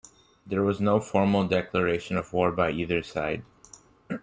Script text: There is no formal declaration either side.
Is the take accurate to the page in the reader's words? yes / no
no